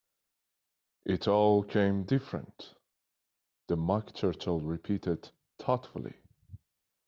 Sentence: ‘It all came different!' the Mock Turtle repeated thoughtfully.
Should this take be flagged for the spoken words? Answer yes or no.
no